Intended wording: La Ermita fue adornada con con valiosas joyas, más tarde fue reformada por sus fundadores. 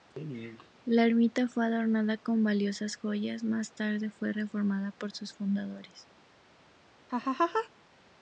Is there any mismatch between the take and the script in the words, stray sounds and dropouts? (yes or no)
yes